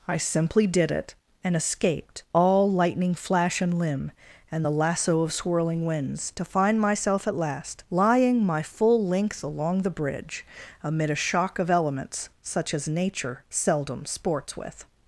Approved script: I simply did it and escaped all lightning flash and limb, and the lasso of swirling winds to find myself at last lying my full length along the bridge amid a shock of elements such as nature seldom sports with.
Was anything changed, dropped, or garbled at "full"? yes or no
no